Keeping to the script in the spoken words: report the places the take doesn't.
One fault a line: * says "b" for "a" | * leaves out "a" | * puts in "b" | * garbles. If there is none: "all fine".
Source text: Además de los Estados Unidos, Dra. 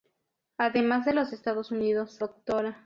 all fine